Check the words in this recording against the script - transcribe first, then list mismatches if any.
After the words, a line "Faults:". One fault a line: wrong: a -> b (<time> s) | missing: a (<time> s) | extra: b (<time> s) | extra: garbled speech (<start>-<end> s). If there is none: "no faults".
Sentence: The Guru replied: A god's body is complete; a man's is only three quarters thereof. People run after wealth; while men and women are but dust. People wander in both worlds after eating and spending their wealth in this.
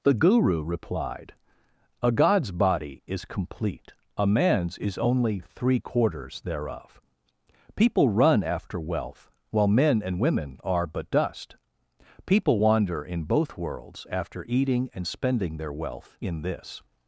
The Guru replied: A god's body is complete; a man's is only three quarters thereof. People run after wealth; while men and women are but dust. People wander in both worlds after eating and spending their wealth in this.
Faults:
no faults